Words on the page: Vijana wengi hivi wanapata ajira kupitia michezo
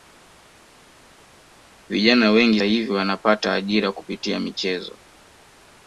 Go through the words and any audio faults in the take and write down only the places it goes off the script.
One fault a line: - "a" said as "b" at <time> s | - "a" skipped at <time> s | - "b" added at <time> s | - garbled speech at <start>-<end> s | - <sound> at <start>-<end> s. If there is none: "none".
none